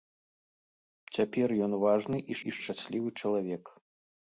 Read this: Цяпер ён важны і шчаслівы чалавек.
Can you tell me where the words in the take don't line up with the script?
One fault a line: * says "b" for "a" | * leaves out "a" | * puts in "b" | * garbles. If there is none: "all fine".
* puts in "і"